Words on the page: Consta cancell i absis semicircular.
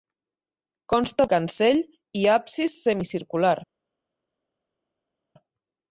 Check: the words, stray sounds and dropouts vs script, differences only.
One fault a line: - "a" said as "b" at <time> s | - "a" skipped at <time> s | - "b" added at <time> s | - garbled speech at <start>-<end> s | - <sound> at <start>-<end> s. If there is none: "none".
none